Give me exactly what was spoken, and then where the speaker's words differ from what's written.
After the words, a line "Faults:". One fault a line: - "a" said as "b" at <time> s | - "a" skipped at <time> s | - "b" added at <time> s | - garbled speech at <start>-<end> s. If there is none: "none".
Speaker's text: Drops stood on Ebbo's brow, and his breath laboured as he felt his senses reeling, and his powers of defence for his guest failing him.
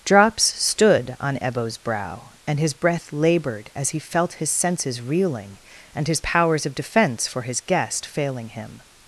Drops stood on Ebbo's brow, and his breath laboured as he felt his senses reeling, and his powers of defence for his guest failing him.
Faults:
none